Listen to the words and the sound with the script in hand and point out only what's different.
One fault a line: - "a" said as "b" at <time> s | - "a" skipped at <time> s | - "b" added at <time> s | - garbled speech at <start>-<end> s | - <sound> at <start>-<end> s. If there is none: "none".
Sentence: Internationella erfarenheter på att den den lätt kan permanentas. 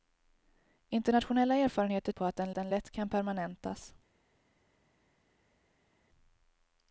none